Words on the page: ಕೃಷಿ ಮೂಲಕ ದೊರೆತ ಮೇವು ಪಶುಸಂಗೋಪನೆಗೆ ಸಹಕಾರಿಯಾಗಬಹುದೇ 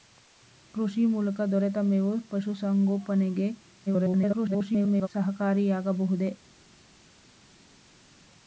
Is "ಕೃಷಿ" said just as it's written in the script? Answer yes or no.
yes